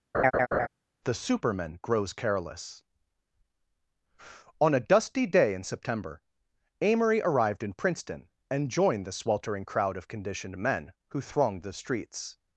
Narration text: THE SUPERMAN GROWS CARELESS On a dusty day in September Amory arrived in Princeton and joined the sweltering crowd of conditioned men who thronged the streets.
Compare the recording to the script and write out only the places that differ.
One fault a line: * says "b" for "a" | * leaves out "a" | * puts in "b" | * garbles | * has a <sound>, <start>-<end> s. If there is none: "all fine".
* has a laugh, 0.1-0.7 s